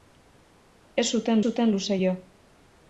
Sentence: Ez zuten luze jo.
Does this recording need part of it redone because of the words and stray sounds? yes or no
yes